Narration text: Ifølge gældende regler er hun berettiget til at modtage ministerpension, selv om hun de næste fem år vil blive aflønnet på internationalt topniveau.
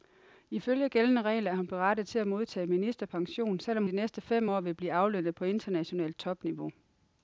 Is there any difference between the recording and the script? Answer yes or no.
yes